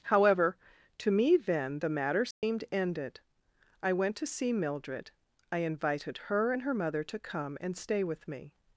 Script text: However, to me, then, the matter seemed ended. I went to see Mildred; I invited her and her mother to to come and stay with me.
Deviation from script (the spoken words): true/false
true